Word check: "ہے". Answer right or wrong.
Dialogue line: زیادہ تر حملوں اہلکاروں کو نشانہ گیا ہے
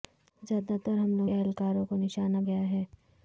right